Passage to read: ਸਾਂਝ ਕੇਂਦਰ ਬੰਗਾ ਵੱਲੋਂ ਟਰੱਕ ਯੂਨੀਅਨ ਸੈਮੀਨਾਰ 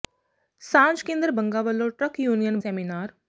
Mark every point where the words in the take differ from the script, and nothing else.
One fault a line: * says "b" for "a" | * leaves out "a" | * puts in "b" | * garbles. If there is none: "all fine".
all fine